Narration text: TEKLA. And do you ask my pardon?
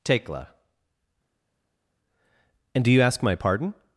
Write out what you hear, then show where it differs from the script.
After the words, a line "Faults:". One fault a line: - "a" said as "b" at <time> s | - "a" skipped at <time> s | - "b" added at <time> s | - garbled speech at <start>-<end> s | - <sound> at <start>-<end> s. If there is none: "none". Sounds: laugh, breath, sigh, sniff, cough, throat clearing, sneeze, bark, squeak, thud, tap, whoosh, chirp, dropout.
TEKLA. And do you ask my pardon?
Faults:
none